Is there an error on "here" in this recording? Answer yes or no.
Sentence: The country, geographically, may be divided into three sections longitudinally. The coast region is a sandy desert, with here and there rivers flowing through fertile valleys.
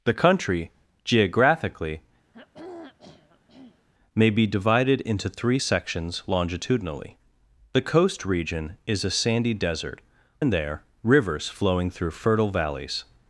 yes